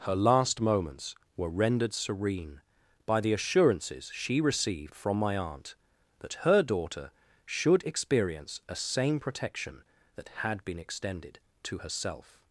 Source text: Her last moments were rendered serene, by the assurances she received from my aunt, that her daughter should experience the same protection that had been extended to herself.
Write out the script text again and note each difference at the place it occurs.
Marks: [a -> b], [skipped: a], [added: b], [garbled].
Her last moments were rendered serene, by the assurances she received from my aunt, that her daughter should experience [the -> a] same protection that had been extended to herself.